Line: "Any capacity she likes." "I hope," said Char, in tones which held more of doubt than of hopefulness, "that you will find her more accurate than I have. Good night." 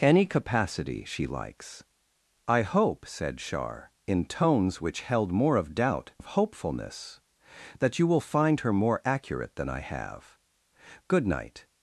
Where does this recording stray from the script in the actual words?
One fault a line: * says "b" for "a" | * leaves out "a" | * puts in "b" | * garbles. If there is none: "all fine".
* leaves out "than"